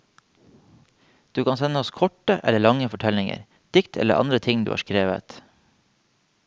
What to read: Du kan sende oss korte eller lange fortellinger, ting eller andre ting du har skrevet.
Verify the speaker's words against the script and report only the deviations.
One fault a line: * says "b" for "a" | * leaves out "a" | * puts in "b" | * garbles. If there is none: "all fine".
* says "dikt" for "ting"